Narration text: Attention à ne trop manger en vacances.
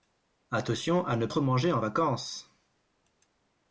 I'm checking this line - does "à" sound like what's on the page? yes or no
yes